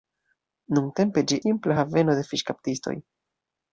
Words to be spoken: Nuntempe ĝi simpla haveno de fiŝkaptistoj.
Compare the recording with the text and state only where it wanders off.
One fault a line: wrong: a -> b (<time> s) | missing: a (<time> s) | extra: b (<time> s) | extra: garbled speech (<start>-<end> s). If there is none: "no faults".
no faults